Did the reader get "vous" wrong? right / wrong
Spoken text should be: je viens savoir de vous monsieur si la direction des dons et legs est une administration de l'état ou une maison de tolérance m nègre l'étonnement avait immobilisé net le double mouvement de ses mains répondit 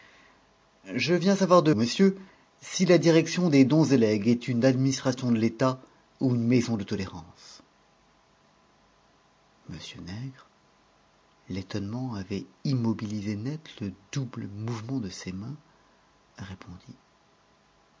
wrong